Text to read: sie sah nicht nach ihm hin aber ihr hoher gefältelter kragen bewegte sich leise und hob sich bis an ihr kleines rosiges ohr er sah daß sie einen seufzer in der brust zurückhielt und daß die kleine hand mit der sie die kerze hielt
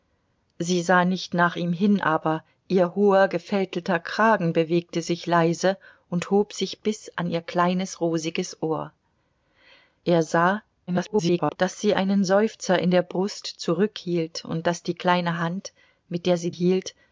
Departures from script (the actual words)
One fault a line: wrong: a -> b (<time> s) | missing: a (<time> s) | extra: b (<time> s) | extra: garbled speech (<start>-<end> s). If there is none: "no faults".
extra: garbled speech (10.9-11.6 s)
missing: die kerze (16.5 s)